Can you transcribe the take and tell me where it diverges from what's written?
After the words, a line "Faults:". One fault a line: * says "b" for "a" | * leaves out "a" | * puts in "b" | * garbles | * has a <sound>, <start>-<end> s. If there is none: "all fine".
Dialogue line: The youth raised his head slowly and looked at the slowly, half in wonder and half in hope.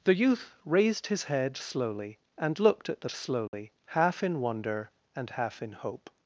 The youth raised his head slowly and looked at the slowly, half in wonder and half in hope.
Faults:
* has a dropout, 3.5-3.5 s